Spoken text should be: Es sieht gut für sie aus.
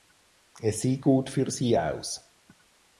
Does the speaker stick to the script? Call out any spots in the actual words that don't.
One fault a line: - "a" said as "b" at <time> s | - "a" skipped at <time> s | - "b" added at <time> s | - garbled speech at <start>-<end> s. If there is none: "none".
none